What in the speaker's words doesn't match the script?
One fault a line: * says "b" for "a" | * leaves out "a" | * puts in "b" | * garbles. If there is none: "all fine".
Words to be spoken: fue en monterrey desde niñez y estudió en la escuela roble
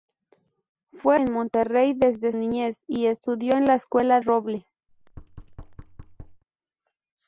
all fine